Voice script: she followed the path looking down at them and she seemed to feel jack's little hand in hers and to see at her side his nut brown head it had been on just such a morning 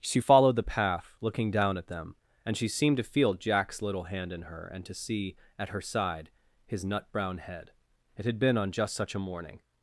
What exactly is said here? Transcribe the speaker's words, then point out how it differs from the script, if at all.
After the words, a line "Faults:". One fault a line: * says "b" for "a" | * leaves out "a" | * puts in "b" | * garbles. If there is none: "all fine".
she followed the path looking down at them and she seemed to feel jack's little hand in her and to see at her side his nut brown head it had been on just such a morning
Faults:
* says "her" for "hers"